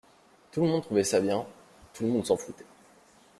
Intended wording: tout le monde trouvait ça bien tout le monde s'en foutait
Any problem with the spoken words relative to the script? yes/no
no